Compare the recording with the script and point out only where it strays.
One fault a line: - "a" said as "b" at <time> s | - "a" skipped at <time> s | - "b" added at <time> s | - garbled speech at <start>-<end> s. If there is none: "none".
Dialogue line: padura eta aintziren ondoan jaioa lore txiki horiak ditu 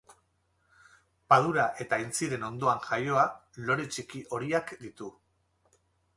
none